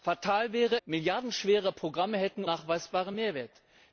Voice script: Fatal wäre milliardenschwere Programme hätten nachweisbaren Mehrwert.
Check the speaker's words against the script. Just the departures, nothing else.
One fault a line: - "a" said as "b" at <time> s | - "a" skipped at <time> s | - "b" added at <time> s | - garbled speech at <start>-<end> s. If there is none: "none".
none